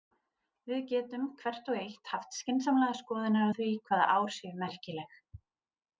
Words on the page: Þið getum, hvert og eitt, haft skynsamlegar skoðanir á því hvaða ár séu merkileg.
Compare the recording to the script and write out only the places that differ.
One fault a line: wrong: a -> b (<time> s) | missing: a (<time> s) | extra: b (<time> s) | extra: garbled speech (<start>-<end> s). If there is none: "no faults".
wrong: Þið -> Við (0.7 s)